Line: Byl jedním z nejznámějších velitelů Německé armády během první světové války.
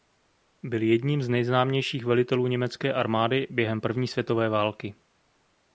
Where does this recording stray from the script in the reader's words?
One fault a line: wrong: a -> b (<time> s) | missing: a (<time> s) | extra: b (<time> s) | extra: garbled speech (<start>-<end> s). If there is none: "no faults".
no faults